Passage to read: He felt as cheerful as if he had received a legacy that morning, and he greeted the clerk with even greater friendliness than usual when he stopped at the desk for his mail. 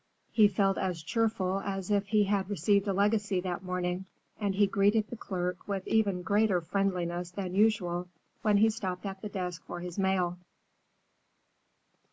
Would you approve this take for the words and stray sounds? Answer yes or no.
yes